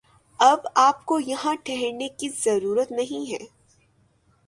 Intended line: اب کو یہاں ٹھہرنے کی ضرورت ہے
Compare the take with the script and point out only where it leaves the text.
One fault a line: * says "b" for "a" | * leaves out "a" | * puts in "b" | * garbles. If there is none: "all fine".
* puts in "آپ"
* puts in "نہیں"